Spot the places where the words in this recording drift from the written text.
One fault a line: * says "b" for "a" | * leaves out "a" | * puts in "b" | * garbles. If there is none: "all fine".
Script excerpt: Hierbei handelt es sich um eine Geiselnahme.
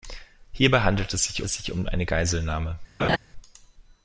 * puts in "es sich"